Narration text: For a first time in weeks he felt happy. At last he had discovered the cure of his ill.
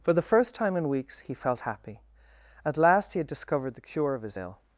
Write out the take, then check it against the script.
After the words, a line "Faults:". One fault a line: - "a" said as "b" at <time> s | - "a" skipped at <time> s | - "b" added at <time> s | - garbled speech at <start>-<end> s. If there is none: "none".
For the first time in weeks he felt happy. At last he had discovered the cure of his ill.
Faults:
- "a" said as "the" at 0.1 s